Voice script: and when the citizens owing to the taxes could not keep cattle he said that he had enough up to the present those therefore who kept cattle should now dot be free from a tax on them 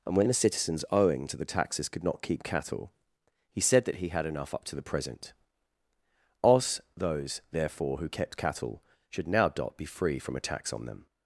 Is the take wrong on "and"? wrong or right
right